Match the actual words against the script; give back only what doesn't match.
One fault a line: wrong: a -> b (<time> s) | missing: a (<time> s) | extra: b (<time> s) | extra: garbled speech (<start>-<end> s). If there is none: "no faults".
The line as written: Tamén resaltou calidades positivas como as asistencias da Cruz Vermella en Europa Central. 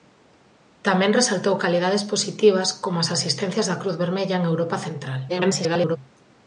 extra: garbled speech (5.3-6.0 s)